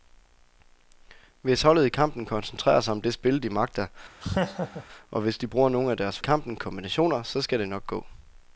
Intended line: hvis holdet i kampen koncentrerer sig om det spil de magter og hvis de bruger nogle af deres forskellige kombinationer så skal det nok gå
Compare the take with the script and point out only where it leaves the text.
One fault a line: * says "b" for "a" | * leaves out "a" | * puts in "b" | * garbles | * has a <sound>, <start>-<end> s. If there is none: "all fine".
* has a laugh, 4.2-4.9 s
* says "kampen" for "forskellige"